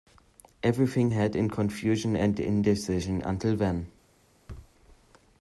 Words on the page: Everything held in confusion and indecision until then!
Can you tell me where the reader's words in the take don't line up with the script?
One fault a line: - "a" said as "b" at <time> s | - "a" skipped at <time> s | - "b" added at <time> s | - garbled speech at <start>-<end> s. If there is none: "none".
none